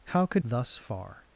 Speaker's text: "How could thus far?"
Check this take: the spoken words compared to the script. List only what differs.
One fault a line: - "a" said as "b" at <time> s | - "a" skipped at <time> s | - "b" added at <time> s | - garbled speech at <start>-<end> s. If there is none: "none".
none